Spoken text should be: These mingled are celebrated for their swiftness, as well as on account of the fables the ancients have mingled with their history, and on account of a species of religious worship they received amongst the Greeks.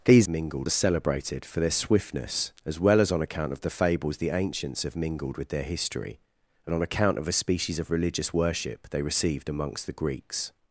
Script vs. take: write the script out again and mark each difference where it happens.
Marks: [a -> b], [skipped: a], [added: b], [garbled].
These mingled are celebrated for their swiftness, as well as on account of the fables the ancients have mingled with their history, and on account of a species of religious worship they received amongst the Greeks.